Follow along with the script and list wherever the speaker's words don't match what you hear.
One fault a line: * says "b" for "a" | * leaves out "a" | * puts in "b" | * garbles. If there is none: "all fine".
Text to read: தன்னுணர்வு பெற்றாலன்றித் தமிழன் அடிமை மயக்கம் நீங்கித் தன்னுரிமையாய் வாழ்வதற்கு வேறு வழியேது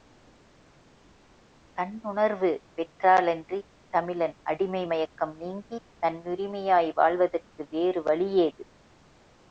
all fine